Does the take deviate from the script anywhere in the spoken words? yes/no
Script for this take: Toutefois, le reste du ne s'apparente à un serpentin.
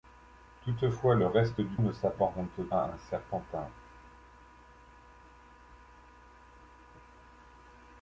no